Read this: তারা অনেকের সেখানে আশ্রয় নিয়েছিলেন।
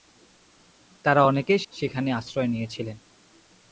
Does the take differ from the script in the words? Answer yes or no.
no